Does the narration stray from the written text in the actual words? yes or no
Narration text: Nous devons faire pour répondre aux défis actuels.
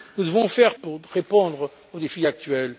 no